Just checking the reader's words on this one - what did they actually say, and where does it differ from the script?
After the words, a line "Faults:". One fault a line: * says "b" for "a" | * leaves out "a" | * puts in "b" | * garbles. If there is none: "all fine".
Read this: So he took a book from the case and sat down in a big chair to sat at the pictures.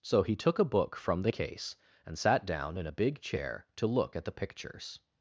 So he took a book from the case and sat down in a big chair to look at the pictures.
Faults:
* says "look" for "sat"